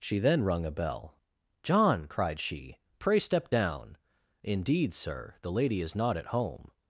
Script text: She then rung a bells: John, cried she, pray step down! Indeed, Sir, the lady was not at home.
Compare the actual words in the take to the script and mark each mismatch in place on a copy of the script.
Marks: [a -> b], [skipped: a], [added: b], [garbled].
She then rung a [bells: -> bell] John, cried she, pray step down! Indeed, Sir, the lady [was -> is] not at home.